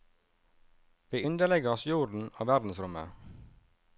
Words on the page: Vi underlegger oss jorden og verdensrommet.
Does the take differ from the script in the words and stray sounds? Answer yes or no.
no